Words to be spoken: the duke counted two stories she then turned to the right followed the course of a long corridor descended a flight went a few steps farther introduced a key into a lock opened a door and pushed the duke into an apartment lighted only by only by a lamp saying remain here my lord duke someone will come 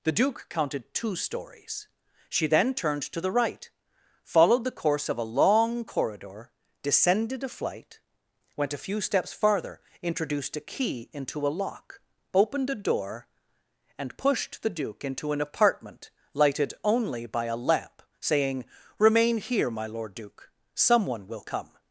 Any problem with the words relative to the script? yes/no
yes